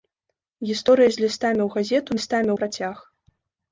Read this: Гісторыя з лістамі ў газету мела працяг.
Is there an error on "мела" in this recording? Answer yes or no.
yes